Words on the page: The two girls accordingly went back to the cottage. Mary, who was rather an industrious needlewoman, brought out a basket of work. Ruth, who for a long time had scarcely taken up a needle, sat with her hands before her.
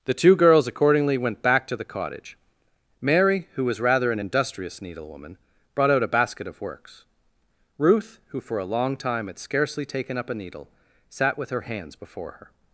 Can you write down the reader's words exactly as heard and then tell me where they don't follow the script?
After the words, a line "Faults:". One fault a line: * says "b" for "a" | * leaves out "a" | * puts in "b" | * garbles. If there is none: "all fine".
The two girls accordingly went back to the cottage. Mary, who was rather an industrious needlewoman, brought out a basket of works. Ruth, who for a long time had scarcely taken up a needle, sat with her hands before her.
Faults:
* says "works" for "work"